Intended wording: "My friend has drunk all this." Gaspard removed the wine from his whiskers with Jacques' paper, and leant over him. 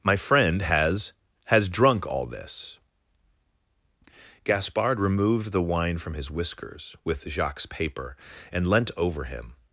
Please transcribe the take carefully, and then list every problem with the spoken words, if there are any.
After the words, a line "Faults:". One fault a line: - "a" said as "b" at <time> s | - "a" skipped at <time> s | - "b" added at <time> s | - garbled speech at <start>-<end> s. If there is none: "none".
"My friend has has drunk all this." Gaspard removed the wine from his whiskers with Jacques' paper, and leant over him.
Faults:
- "has" added at 1.4 s